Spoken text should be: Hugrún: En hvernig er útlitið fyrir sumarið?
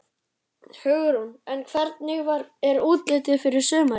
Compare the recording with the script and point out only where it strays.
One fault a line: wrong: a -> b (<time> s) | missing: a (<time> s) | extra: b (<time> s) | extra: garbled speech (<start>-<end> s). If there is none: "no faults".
no faults